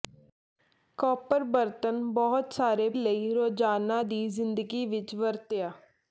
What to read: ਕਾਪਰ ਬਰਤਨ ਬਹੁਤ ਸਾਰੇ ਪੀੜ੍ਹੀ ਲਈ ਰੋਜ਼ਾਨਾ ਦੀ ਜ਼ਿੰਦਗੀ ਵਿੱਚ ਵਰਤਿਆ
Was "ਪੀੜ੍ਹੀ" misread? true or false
true